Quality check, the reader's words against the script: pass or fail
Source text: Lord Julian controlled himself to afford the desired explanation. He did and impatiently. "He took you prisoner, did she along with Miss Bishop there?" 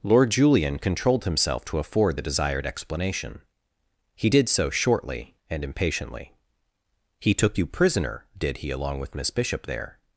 fail